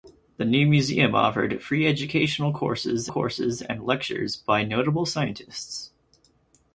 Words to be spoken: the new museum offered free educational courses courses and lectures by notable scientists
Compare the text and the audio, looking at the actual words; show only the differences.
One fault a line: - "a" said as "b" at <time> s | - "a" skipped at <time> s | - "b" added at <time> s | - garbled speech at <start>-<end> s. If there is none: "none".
none